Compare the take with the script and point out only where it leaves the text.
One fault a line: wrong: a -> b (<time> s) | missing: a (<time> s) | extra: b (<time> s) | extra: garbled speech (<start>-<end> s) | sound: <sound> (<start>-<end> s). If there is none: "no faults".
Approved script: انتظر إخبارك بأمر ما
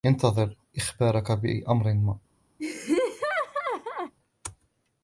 sound: laugh (2.6-4.1 s)